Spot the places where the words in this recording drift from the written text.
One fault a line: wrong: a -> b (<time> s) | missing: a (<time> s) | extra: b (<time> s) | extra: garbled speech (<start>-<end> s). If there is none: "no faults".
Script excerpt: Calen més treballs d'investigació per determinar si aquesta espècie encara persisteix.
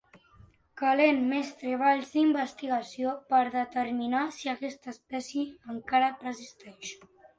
no faults